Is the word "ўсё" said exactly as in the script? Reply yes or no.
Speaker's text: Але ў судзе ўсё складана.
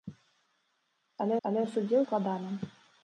no